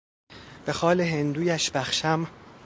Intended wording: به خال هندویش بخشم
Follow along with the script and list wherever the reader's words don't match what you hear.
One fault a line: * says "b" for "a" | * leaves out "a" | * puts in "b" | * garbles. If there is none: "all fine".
all fine